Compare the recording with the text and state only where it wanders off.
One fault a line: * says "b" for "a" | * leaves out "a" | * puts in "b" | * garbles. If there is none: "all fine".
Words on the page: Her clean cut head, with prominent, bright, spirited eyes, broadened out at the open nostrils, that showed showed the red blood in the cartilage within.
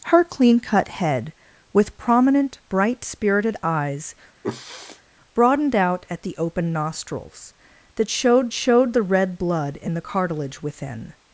all fine